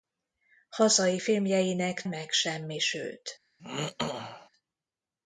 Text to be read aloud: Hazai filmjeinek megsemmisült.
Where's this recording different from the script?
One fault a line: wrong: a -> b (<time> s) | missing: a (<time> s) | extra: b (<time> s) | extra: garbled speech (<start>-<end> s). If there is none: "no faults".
no faults